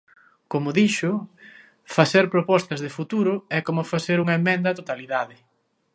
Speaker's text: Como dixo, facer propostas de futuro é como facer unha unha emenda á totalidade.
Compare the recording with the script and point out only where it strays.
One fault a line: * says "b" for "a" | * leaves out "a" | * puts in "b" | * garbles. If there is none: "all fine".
* leaves out "unha"